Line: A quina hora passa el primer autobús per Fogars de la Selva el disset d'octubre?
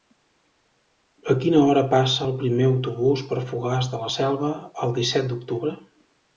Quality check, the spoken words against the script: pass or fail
pass